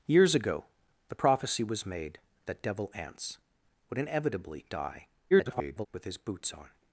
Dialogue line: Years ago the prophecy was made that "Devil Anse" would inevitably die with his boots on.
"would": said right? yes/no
yes